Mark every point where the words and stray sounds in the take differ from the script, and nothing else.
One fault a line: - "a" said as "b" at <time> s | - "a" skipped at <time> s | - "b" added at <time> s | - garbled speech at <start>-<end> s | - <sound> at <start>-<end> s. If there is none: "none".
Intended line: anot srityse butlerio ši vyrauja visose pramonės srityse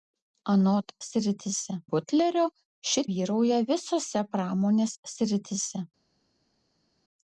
none